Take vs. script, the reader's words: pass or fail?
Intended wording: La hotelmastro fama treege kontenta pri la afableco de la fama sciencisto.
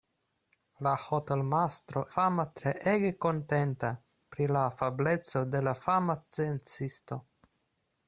pass